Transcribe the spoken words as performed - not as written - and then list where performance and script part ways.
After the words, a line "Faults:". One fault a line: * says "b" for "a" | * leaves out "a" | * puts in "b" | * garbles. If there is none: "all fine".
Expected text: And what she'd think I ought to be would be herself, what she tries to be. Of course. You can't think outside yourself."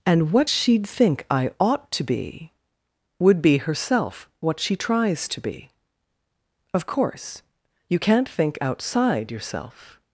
And what she'd think I ought to be would be herself, what she tries to be. Of course. You can't think outside yourself."
Faults:
all fine